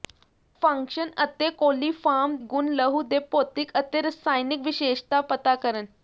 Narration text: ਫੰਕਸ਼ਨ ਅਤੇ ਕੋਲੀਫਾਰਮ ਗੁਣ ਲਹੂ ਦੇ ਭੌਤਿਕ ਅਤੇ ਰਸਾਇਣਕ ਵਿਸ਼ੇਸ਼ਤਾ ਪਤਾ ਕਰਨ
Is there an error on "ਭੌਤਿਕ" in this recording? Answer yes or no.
no